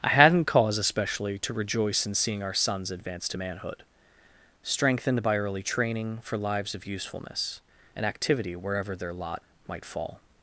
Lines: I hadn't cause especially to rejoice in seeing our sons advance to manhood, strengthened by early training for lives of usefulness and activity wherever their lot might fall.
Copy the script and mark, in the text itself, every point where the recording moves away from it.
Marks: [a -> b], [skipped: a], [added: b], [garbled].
I hadn't cause especially to rejoice in seeing our sons advance to manhood, strengthened by early training for lives of usefulness and activity wherever their lot might fall.